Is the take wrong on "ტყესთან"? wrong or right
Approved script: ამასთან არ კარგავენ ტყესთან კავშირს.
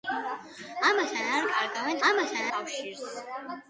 wrong